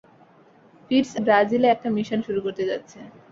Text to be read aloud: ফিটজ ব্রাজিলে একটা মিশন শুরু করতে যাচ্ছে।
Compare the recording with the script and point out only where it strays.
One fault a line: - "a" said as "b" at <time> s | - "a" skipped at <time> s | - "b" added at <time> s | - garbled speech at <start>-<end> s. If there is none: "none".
none